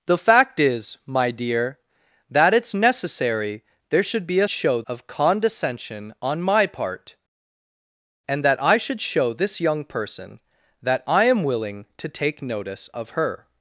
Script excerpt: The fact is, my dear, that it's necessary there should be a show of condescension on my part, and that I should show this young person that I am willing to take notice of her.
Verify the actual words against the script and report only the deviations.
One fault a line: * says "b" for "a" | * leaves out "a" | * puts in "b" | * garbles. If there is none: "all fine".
all fine